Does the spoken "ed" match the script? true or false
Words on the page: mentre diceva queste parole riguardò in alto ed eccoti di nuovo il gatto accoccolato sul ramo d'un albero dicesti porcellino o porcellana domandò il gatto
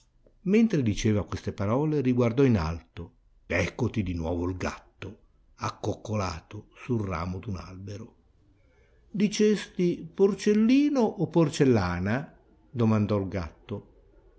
false